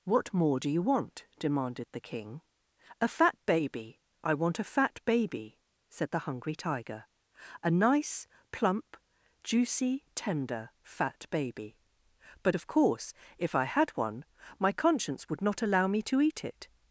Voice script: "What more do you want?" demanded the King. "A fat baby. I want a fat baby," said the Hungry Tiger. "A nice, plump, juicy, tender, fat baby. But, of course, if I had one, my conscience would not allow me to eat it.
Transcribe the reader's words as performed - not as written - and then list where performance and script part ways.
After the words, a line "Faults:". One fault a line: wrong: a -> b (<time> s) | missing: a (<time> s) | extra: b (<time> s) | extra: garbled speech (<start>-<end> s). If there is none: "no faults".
"What more do you want?" demanded the King. "A fat baby. I want a fat baby," said the Hungry Tiger. "A nice, plump, juicy, tender, fat baby. But, of course, if I had one, my conscience would not allow me to eat it.
Faults:
no faults